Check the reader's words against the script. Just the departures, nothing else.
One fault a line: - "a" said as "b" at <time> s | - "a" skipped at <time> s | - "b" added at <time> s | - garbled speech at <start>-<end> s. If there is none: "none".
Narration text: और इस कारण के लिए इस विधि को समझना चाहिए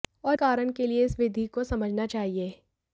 - "इस" skipped at 0.4 s